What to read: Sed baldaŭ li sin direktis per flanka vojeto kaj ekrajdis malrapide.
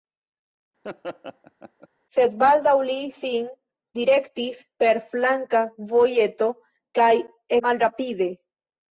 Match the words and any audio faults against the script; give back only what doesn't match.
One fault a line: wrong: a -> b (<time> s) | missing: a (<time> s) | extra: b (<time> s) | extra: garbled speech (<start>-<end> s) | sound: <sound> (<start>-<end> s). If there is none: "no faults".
sound: laugh (0.8-1.9 s)
missing: ekrajdis (7.1 s)